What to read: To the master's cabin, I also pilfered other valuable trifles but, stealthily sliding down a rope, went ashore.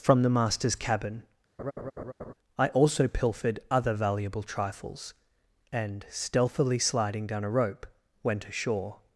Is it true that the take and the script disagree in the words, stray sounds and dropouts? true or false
true